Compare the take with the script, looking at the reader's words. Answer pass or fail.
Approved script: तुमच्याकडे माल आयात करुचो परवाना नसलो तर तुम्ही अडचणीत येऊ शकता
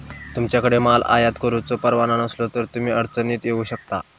pass